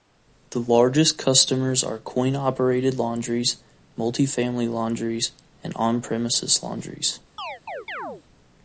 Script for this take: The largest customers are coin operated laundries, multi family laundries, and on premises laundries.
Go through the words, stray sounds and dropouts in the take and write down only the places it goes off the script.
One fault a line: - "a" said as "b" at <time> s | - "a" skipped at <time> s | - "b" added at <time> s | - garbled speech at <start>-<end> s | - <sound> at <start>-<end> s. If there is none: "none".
- chirp at 7.4-8.2 s